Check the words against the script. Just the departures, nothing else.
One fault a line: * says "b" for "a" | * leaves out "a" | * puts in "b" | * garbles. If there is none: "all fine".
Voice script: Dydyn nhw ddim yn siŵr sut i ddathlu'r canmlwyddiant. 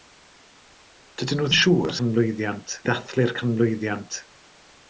* leaves out "ddim"
* says "canmlwyddiant" for "sut"